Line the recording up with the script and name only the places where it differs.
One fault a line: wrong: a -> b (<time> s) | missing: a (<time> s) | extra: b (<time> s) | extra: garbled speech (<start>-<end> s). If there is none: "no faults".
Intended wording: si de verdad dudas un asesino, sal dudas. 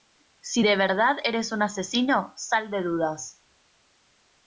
wrong: dudas -> eres (1.2 s)
extra: de (2.7 s)